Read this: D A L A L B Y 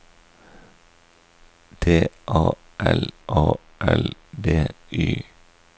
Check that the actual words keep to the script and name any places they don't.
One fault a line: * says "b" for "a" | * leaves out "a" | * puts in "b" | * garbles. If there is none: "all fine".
all fine